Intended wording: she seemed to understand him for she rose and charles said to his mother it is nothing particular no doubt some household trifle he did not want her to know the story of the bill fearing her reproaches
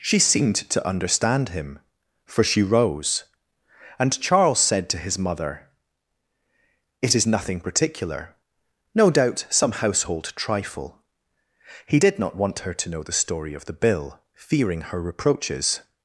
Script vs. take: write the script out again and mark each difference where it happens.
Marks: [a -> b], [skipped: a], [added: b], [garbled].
she seemed to understand him for she rose and charles said to his mother it is nothing particular no doubt some household trifle he did not want her to know the story of the bill fearing her reproaches